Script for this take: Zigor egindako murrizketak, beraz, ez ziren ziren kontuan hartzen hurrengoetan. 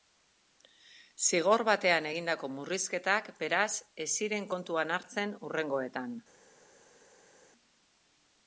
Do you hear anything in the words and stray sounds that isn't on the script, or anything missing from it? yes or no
yes